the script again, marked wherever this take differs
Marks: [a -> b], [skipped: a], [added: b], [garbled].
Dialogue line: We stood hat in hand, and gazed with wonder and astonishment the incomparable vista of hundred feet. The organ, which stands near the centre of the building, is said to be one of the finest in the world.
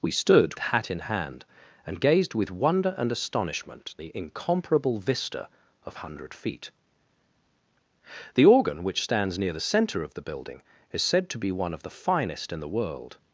We stood hat in hand, and gazed with wonder and astonishment the incomparable vista of hundred feet. The organ, which stands near the centre of the building, is said to be one of the finest in the world.